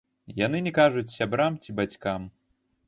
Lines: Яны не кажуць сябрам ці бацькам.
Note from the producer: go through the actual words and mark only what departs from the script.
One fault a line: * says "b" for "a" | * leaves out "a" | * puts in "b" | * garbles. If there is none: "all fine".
all fine